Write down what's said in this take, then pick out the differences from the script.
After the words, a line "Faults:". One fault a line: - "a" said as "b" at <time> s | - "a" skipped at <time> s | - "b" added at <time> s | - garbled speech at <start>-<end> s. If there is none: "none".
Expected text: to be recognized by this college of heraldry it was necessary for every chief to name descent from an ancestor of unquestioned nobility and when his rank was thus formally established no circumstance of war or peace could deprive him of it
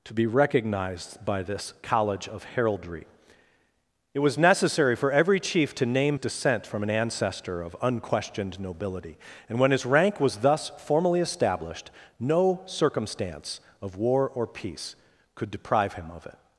to be recognized by this college of heraldry it was necessary for every chief to name descent from an ancestor of unquestioned nobility and when his rank was thus formally established no circumstance of war or peace could deprive him of it
Faults:
none